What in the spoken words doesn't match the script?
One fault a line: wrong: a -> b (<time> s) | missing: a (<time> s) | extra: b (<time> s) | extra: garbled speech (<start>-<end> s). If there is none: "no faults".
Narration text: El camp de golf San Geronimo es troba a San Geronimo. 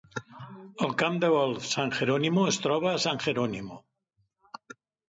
no faults